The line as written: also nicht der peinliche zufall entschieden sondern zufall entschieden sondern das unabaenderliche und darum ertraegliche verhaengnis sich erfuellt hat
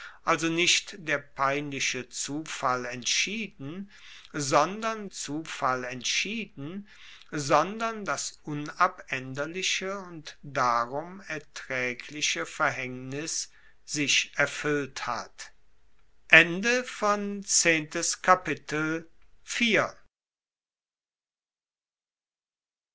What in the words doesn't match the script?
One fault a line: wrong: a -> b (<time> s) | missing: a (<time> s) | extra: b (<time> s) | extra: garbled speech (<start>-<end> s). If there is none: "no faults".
no faults